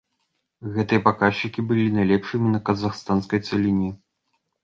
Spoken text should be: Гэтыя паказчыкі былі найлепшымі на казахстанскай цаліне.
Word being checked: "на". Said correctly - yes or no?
yes